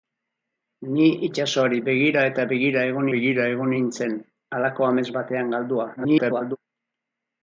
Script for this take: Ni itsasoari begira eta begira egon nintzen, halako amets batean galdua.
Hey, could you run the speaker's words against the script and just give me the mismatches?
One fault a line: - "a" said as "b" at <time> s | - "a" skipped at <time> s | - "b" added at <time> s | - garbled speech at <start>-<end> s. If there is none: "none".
- "begira egon" added at 3.1 s
- garbled speech at 6.0-6.6 s